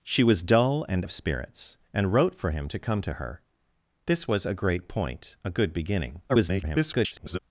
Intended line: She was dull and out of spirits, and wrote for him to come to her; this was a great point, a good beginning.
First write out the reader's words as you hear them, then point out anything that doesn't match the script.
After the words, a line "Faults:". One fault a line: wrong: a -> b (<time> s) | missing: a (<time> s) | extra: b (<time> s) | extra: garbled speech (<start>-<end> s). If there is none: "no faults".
She was dull and of spirits, and wrote for him to come to her; this was a great point, a good beginning. [garbled]
Faults:
missing: out (1.1 s)
extra: garbled speech (6.3-7.4 s)